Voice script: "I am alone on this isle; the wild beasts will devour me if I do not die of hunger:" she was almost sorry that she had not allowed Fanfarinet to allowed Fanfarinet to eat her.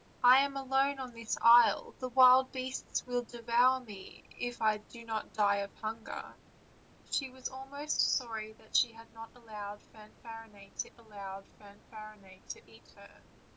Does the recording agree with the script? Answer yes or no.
yes